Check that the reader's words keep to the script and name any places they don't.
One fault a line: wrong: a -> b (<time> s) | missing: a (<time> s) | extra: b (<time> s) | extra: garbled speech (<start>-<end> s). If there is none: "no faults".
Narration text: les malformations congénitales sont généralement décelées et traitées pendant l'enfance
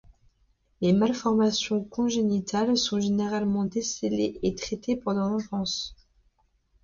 no faults